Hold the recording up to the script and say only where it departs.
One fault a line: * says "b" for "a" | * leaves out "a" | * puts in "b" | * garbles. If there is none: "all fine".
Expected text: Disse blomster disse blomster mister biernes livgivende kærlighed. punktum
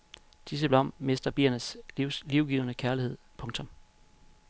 * leaves out "disse blomster"